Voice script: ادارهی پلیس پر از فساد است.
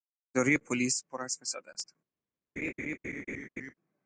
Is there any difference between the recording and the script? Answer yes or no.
no